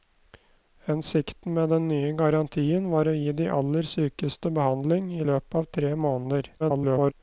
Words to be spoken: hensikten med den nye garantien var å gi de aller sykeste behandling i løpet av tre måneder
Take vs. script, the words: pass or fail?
fail